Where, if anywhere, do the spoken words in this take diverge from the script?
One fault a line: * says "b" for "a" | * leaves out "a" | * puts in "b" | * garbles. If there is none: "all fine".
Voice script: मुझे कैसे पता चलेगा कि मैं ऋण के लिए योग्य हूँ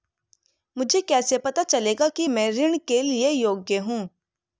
all fine